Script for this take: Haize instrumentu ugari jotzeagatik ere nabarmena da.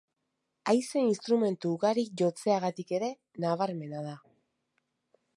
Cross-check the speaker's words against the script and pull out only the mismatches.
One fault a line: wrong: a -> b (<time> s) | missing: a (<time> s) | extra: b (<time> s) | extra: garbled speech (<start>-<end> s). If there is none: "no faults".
no faults